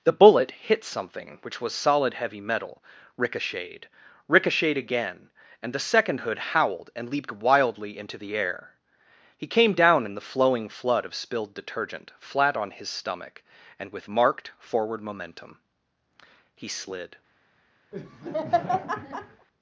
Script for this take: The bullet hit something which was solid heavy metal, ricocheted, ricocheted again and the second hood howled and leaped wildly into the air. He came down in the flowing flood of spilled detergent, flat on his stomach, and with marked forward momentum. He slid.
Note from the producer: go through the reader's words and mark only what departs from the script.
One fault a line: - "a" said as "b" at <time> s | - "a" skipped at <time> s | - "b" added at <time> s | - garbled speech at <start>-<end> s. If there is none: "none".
none